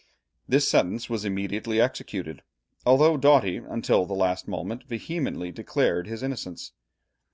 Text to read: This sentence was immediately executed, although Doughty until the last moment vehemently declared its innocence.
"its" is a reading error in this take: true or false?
true